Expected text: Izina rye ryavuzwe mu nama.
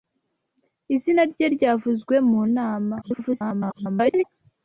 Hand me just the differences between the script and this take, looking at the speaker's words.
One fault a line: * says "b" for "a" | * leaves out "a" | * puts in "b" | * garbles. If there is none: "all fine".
* garbles